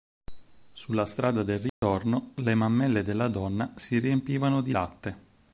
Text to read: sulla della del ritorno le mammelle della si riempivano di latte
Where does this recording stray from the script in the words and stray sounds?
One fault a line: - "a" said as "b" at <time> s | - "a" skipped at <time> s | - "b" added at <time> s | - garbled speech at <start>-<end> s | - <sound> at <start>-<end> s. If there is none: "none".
- "della" said as "strada" at 1.1 s
- dropout at 1.7-1.8 s
- "donna" added at 3.3 s